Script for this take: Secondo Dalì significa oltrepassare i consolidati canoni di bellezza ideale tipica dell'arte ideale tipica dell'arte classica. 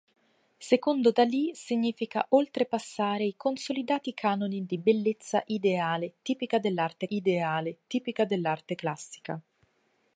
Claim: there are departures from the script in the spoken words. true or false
false